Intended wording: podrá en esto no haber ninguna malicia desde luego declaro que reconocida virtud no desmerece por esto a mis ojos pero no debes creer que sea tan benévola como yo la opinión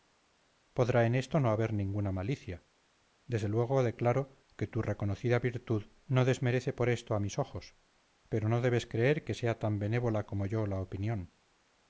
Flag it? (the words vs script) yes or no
yes